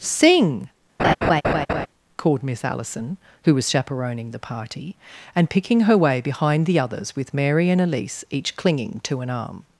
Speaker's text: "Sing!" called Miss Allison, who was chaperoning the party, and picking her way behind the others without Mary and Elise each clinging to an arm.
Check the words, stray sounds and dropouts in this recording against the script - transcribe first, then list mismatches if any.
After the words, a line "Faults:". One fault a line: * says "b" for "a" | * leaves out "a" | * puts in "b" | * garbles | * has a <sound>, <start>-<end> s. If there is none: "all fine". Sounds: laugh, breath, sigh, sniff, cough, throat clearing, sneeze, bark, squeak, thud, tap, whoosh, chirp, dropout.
"Sing!" called Miss Allison, who was chaperoning the party, and picking her way behind the others with Mary and Elise each clinging to an arm.
Faults:
* has a laugh, 1.0-1.9 s
* says "with" for "without"